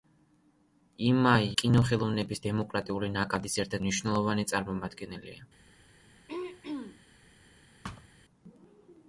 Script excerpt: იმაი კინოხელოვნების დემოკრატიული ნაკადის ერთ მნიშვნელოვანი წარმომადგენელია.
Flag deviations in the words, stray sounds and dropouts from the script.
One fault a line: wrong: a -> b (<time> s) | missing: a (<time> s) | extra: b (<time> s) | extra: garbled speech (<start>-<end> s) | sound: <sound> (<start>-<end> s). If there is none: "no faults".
sound: throat clearing (6.3-7.0 s)
sound: thud (7.8-8.1 s)